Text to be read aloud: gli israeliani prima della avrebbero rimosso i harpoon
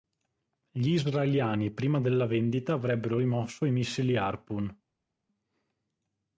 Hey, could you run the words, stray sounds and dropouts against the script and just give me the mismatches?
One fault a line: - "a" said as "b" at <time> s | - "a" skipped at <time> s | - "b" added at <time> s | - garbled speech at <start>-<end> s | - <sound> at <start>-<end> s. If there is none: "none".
- "vendita" added at 2.2 s
- "missili" added at 3.7 s